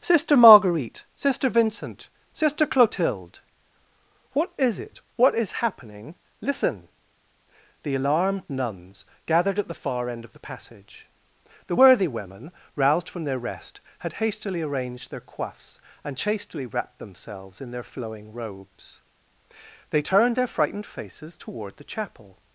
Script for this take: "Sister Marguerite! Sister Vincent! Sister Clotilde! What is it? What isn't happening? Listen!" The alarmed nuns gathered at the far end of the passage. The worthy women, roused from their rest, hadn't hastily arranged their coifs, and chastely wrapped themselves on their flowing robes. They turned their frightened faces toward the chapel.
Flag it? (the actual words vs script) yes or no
yes